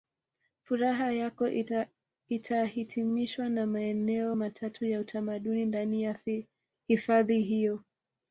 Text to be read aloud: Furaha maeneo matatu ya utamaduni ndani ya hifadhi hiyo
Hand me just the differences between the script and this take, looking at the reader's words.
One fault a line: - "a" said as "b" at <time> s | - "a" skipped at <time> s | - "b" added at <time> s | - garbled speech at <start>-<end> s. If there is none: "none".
- "yako itahitimishwa na" added at 1.1 s